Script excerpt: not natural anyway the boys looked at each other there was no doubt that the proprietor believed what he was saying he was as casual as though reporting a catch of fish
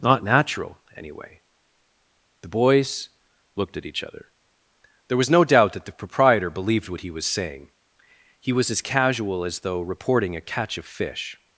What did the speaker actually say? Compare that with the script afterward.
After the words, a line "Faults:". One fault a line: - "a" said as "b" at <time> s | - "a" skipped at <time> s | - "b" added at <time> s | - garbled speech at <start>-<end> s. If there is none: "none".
not natural anyway the boys looked at each other there was no doubt that the proprietor believed what he was saying he was as casual as though reporting a catch of fish
Faults:
none